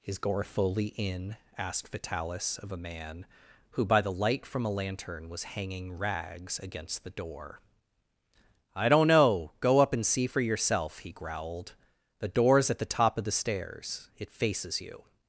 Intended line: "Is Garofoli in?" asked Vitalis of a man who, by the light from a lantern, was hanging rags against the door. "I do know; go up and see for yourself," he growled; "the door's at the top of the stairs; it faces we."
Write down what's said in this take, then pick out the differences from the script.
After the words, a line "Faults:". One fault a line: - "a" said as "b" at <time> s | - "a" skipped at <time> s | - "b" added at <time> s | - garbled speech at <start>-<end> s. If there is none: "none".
"Is Garofoli in?" asked Vitalis of a man who, by the light from a lantern, was hanging rags against the door. "I don't know; go up and see for yourself," he growled; "the door's at the top of the stairs; it faces you."
Faults:
- "do" said as "don't" at 8.9 s
- "we" said as "you" at 14.8 s